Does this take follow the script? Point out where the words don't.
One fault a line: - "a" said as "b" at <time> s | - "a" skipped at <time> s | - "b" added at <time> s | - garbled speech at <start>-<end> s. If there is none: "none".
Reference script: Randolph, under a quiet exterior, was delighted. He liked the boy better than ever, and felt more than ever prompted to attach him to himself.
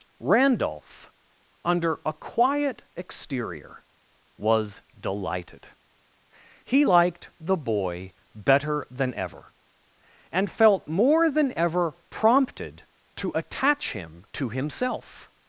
none